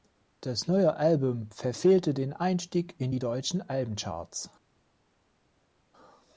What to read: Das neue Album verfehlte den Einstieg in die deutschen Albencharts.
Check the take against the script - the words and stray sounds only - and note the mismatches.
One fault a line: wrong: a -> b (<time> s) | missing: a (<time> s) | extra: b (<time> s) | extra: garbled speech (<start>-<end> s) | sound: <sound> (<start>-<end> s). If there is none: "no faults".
no faults